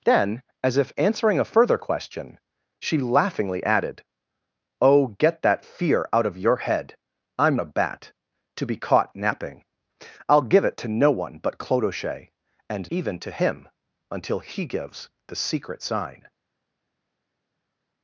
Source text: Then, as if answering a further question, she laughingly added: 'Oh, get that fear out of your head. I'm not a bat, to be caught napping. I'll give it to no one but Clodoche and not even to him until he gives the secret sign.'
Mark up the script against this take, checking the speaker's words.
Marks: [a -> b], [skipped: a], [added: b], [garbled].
Then, as if answering a further question, she laughingly added: 'Oh, get that fear out of your head. I'm [skipped: not] a bat, to be caught napping. I'll give it to no one but Clodoche and [skipped: not] even to him until he gives the secret sign.'